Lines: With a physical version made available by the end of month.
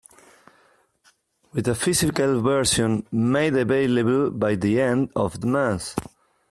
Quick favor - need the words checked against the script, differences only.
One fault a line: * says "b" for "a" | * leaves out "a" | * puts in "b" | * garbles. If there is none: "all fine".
all fine